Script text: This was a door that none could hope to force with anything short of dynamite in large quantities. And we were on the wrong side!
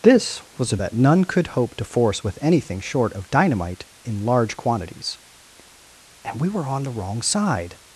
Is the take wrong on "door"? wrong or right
wrong